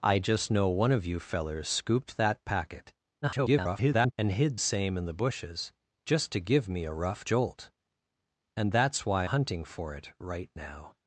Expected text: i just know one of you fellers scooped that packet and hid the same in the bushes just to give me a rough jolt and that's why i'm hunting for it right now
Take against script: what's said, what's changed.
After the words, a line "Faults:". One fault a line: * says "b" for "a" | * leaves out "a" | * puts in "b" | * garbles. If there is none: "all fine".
i just know one of you fellers scooped that packet [garbled] and hid same in the bushes just to give me a rough jolt and that's why hunting for it right now
Faults:
* garbles
* leaves out "the"
* leaves out "i'm"